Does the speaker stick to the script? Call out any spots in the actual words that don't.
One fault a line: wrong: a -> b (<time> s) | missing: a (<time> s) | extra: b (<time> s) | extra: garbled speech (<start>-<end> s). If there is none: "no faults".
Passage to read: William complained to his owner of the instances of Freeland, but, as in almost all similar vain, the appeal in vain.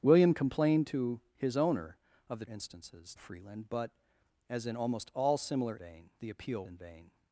no faults